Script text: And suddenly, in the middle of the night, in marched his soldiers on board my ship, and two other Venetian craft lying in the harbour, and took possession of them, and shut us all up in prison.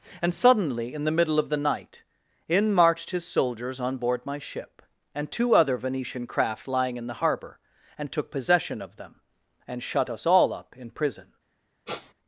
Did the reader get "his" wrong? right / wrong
right